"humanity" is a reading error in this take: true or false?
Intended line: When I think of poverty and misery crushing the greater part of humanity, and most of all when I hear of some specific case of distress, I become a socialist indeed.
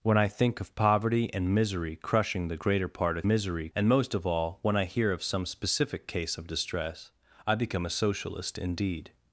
true